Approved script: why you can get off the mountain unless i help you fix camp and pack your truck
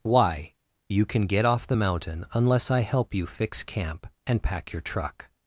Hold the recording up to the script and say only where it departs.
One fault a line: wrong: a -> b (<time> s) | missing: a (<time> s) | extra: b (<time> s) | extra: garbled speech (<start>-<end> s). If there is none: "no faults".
no faults